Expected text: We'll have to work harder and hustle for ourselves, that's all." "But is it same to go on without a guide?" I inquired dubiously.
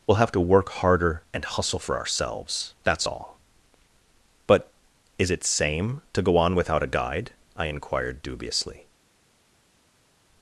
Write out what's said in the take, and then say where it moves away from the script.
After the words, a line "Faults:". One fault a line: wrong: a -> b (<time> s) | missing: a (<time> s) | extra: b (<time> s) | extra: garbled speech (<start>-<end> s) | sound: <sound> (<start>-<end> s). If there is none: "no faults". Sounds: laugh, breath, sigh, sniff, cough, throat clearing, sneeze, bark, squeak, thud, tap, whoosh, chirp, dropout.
We'll have to work harder and hustle for ourselves, that's all." "But is it same to go on without a guide?" I inquired dubiously.
Faults:
no faults